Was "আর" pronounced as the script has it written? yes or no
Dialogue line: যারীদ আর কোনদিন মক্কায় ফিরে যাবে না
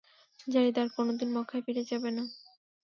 yes